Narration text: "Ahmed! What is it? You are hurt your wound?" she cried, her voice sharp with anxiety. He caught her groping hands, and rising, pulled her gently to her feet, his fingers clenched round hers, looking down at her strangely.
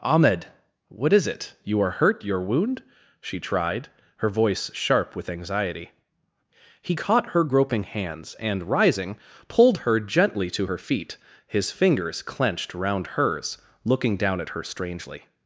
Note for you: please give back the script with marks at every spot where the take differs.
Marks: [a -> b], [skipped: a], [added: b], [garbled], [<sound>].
"Ahmed! What is it? You are hurt your wound?" she [cried, -> tried] her voice sharp with anxiety. He caught her groping hands, and rising, pulled her gently to her feet, his fingers clenched round hers, looking down at her strangely.